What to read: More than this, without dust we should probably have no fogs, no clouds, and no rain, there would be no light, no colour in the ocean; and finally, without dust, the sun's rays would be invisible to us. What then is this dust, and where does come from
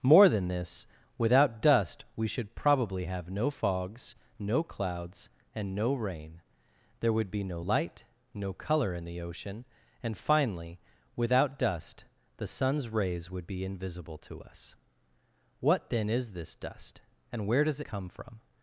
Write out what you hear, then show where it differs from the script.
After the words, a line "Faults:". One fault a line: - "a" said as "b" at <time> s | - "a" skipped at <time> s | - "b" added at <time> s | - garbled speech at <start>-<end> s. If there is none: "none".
More than this, without dust we should probably have no fogs, no clouds, and no rain, there would be no light, no colour in the ocean; and finally, without dust, the sun's rays would be invisible to us. What then is this dust, and where does come from
Faults:
none